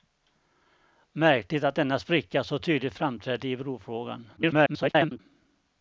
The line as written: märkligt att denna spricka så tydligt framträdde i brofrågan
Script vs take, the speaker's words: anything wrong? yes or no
yes